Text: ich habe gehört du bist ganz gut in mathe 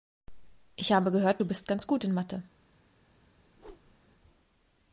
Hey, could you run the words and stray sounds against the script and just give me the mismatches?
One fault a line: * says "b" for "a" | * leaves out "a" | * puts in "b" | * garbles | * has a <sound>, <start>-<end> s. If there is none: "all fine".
* has a whoosh, 3.5-4.0 s